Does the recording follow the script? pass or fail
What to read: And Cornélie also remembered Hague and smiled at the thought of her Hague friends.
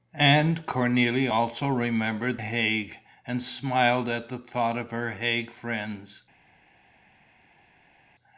pass